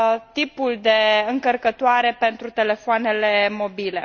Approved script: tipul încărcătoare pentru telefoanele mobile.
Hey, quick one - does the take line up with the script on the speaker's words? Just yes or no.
no